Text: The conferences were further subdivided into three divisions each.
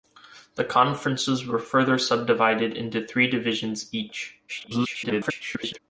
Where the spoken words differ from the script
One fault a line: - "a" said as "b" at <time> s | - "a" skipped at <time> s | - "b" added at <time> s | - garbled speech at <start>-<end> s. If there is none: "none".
- garbled speech at 4.5-5.8 s